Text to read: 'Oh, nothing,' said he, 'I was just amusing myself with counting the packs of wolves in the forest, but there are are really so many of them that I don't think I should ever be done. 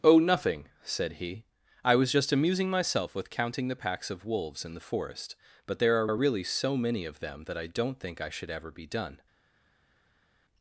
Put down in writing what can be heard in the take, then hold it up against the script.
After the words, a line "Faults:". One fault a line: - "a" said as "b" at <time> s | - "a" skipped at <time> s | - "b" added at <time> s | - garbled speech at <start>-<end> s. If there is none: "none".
'Oh, nothing,' said he, 'I was just amusing myself with counting the packs of wolves in the forest, but there are are really so many of them that I don't think I should ever be done.
Faults:
none